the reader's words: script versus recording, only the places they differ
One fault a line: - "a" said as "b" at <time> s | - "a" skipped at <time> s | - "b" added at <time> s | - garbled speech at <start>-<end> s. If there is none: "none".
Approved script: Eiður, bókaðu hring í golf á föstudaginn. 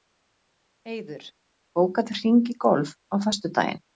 none